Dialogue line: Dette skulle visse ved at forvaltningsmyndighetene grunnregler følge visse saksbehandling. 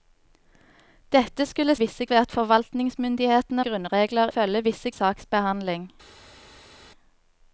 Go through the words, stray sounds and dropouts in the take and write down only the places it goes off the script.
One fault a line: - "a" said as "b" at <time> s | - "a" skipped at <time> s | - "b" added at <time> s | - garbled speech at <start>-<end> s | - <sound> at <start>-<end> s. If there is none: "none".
none